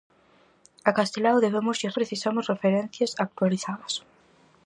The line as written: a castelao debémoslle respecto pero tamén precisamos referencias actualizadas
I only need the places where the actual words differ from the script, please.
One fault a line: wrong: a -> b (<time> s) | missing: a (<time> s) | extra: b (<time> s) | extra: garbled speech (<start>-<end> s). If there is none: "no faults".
missing: respecto pero tamén (1.9 s)